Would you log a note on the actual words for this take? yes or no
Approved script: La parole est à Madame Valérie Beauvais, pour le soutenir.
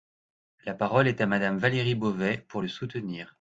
no